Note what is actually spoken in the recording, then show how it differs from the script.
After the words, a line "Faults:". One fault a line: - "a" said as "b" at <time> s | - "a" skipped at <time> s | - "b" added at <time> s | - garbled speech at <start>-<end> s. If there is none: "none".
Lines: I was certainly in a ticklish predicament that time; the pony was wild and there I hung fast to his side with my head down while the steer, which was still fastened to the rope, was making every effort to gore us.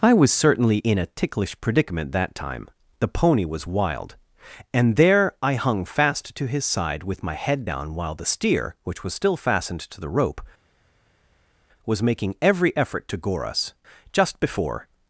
I was certainly in a ticklish predicament that time; the pony was wild and there I hung fast to his side with my head down while the steer, which was still fastened to the rope, was making every effort to gore us. Just before
Faults:
- "Just before" added at 14.1 s